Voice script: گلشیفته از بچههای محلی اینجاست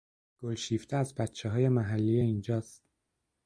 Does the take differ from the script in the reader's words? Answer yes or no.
no